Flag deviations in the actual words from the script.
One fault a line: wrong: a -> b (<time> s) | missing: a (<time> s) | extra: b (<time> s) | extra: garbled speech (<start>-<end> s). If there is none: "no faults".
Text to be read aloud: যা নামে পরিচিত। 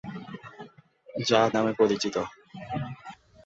no faults